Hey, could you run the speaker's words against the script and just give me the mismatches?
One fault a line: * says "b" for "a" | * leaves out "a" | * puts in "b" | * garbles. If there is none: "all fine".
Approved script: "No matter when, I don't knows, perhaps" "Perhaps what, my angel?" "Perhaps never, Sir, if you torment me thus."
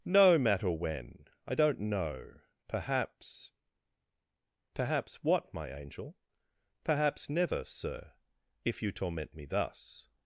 * says "know" for "knows"